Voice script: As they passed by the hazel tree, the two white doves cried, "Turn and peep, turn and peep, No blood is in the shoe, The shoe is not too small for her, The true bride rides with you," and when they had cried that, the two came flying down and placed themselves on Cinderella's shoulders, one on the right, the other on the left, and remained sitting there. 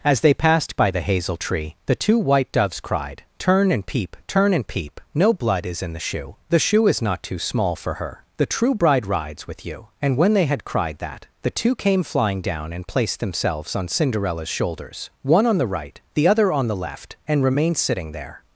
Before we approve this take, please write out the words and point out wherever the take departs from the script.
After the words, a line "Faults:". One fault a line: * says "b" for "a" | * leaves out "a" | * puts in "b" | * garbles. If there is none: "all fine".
As they passed by the hazel tree, the two white doves cried, "Turn and peep, turn and peep, No blood is in the shoe, The shoe is not too small for her, The true bride rides with you," and when they had cried that, the two came flying down and placed themselves on Cinderella's shoulders, one on the right, the other on the left, and remained sitting there.
Faults:
all fine